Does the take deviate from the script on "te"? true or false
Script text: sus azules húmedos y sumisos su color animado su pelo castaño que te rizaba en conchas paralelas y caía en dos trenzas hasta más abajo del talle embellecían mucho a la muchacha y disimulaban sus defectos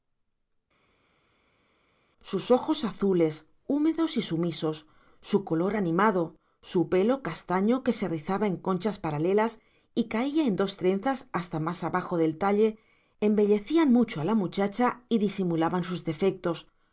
true